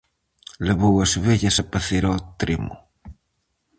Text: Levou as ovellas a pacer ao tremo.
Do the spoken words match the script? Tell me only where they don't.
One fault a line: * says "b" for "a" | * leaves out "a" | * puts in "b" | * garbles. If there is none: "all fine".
all fine